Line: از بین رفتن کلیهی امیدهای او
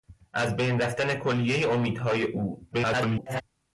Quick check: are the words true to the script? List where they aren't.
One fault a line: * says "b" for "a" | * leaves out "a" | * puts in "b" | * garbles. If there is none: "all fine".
* garbles